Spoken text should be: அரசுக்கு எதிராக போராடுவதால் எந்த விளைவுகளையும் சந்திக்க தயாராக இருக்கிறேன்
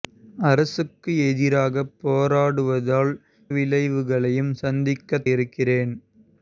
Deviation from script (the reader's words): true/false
true